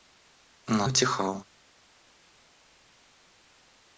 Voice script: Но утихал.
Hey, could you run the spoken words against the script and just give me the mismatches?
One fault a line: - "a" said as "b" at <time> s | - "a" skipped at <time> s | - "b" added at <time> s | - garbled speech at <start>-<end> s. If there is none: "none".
none